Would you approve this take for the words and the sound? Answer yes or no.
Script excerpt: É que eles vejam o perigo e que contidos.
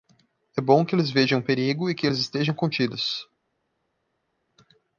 no